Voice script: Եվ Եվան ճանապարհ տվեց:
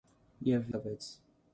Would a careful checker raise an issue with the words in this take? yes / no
yes